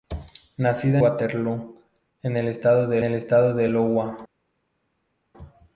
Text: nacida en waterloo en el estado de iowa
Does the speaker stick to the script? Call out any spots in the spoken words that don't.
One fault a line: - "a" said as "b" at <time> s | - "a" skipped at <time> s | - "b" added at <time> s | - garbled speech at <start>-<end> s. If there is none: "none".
- "waterloo" added at 1.0 s
- "waterloo en" said as "el estado de" at 2.4 s